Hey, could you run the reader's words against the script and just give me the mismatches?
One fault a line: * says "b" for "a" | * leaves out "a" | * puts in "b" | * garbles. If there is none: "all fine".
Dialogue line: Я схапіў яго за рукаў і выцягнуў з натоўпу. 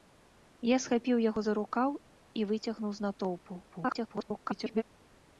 * garbles